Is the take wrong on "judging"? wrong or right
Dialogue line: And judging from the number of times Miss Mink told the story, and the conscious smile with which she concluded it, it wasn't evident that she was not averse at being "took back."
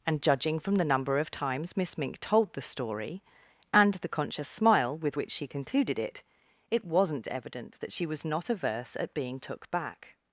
right